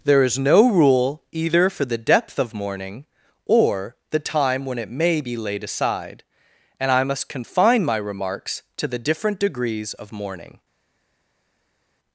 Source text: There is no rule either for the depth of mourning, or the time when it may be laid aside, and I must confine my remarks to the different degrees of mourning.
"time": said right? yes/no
yes